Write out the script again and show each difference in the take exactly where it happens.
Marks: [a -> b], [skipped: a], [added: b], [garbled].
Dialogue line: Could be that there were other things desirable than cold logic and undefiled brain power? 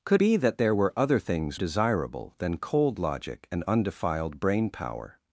Could be that there were other things desirable than cold logic and undefiled brain power?